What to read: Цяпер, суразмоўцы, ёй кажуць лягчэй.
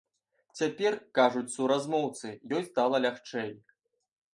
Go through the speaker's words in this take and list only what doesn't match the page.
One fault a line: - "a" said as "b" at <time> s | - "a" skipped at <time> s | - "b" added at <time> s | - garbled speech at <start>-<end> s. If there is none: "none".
- "кажуць" added at 1.2 s
- "кажуць" said as "стала" at 2.7 s